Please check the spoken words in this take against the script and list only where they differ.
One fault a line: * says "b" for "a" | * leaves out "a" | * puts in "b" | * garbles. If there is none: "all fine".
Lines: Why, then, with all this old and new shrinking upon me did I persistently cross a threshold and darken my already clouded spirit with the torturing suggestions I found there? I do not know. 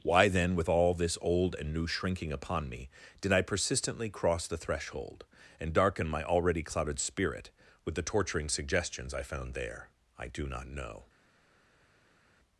* says "the" for "a"